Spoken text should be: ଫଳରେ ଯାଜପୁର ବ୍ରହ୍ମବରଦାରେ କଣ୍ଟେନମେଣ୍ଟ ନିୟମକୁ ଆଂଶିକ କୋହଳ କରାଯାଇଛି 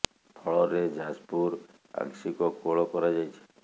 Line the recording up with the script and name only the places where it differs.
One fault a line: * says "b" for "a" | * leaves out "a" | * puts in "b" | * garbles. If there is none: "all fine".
* leaves out "ବ୍ରହ୍ମବରଦାରେ କଣ୍ଟେନମେଣ୍ଟ ନିୟମକୁ"